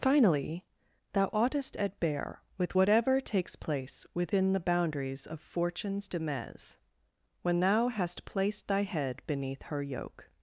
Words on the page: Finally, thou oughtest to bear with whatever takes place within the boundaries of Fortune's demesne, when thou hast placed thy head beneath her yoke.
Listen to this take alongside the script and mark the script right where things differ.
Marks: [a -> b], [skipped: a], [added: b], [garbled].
Finally, thou oughtest [to -> at] bear with whatever takes place within the boundaries of Fortune's demesne, when thou hast placed thy head beneath her yoke.